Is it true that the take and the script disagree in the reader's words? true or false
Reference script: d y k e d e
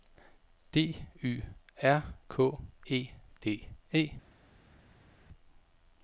true